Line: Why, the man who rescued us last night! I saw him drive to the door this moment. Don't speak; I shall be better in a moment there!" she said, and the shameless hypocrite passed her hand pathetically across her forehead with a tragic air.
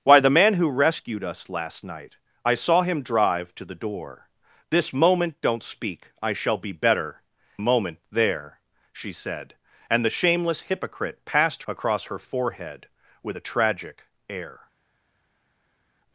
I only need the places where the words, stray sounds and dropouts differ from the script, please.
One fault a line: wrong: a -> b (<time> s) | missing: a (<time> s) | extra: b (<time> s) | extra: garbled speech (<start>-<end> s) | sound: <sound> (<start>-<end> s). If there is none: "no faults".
missing: in (7.2 s)
missing: her hand pathetically (11.6 s)